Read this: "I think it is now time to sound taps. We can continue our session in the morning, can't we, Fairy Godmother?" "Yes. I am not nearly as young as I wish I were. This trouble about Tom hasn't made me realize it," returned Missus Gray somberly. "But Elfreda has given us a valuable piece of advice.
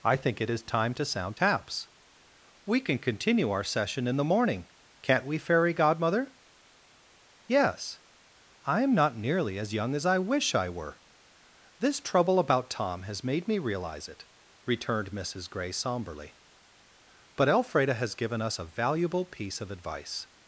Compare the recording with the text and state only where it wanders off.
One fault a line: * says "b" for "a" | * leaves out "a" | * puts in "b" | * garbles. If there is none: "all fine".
* leaves out "now"
* says "has" for "hasn't"